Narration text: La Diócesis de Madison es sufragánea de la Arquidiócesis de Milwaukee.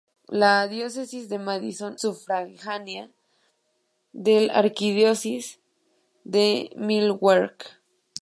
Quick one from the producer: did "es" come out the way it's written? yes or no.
no